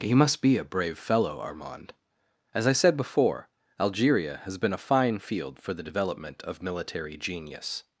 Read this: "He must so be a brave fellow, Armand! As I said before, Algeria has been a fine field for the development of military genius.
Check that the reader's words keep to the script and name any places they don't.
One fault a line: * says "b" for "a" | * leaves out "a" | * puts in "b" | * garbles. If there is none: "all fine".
* leaves out "so"